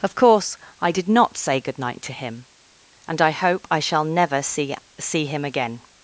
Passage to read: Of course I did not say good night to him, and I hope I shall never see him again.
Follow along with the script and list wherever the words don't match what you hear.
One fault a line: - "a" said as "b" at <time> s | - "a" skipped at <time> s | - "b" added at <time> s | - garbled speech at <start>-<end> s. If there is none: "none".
- "see" added at 5.0 s